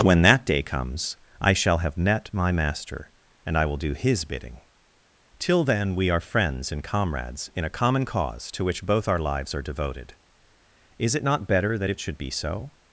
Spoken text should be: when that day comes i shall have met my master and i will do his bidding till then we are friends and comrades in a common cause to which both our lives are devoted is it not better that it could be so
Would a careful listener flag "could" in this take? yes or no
yes